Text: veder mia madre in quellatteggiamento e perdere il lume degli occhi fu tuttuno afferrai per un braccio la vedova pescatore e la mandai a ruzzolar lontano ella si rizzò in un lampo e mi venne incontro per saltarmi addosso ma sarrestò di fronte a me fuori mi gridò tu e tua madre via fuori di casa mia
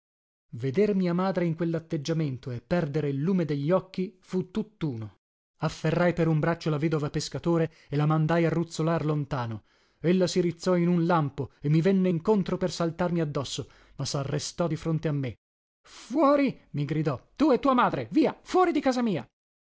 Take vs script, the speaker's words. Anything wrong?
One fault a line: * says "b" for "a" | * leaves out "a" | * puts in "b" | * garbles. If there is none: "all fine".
all fine